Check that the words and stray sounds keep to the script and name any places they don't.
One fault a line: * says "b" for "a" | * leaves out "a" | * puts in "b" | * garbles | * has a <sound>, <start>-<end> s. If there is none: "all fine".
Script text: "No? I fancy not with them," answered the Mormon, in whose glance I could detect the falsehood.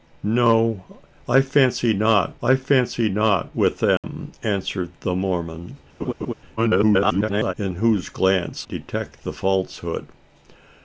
* puts in "I fancy not"
* has a dropout, 4.0-4.0 s
* has a laugh, 6.0-6.3 s
* garbles
* leaves out "I could"